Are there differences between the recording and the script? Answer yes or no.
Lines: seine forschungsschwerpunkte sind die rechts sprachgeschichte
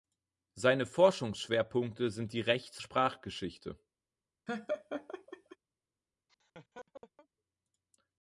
no